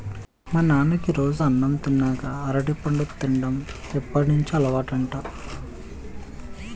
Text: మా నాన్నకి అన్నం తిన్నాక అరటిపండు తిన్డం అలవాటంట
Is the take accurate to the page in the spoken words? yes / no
no